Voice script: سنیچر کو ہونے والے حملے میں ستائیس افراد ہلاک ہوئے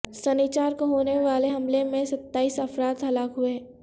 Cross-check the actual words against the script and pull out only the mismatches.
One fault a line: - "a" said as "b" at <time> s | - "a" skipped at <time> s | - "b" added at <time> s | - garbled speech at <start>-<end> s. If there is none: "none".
none